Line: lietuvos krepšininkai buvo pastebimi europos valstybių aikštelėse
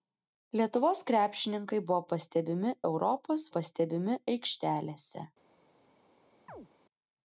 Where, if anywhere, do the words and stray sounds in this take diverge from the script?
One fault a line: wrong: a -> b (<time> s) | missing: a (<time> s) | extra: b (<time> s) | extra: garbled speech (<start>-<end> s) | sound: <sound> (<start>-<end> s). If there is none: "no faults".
wrong: valstybių -> pastebimi (3.6 s)
sound: chirp (6.5-6.7 s)